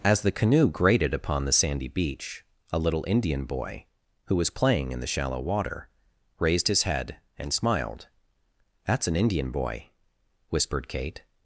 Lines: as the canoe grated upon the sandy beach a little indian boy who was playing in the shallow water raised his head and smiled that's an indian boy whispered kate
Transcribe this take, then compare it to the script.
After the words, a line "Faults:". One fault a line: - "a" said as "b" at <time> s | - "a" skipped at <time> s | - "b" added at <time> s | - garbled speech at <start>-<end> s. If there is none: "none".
as the canoe grated upon the sandy beach a little indian boy who was playing in the shallow water raised his head and smiled that's an indian boy whispered kate
Faults:
none